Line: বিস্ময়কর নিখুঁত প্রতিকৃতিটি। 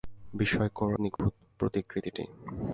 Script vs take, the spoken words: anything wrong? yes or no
no